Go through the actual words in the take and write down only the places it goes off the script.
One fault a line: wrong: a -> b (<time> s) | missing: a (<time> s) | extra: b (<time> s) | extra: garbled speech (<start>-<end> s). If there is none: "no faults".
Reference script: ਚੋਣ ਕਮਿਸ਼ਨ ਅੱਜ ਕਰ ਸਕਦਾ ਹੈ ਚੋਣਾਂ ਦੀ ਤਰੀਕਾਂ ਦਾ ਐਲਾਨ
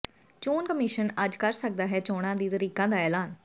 no faults